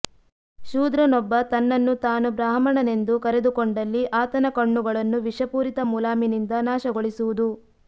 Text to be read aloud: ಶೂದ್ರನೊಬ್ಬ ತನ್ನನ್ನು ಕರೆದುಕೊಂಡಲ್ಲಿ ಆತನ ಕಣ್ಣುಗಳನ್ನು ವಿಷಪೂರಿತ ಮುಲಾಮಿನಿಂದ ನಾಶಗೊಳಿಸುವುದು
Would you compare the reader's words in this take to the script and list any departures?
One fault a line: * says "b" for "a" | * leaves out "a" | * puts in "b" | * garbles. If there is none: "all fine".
* puts in "ತಾನು ಬ್ರಾಹ್ಮಣನೆಂದು"